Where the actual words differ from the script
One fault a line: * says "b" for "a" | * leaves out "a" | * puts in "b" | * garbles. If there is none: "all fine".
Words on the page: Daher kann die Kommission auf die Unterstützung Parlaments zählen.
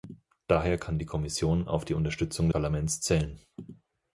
all fine